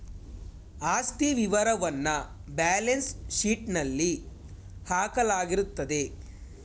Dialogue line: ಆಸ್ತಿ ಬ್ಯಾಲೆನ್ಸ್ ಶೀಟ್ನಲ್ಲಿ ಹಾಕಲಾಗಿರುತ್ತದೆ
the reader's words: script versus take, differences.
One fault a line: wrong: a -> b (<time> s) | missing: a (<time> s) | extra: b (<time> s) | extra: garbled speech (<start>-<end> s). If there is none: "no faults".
extra: ವಿವರವನ್ನ (1.3 s)